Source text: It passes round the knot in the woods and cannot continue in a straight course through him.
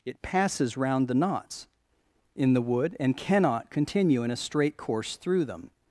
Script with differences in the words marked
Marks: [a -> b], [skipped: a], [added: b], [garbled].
It passes round the [knot -> knots] in the [woods -> wood] and cannot continue in a straight course through [him. -> them]